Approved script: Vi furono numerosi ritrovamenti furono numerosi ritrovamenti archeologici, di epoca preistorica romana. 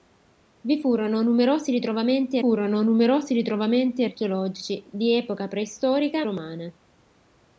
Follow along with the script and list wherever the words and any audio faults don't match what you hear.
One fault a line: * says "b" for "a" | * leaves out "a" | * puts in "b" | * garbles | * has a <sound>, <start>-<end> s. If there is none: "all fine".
all fine